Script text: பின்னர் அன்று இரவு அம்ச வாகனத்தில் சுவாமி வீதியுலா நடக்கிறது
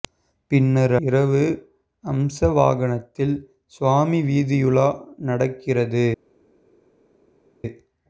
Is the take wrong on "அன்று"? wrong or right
wrong